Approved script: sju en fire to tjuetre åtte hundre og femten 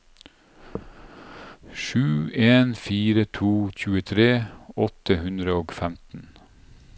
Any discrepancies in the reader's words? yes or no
no